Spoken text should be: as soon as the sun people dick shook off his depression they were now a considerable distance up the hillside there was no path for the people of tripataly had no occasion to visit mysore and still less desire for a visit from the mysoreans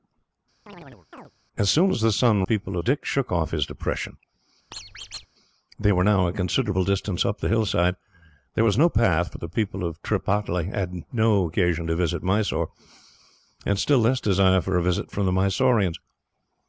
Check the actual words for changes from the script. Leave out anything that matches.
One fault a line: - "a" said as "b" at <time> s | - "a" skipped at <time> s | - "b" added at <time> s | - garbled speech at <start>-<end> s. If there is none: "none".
none